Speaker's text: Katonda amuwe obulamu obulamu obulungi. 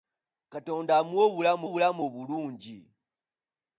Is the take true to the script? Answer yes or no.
yes